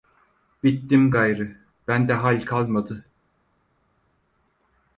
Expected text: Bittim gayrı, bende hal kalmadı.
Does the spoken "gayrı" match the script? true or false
true